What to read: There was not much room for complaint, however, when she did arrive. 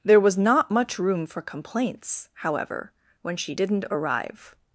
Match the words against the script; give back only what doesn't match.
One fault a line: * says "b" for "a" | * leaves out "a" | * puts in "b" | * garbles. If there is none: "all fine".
* says "complaints" for "complaint"
* says "didn't" for "did"